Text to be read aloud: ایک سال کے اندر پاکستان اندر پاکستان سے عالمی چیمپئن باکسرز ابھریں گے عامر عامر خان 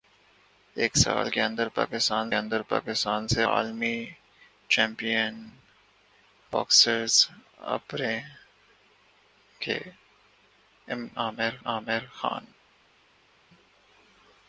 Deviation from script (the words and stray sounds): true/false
false